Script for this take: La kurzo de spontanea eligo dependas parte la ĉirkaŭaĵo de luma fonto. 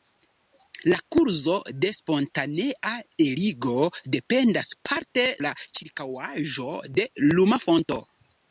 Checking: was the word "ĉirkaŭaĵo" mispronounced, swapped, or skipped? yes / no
no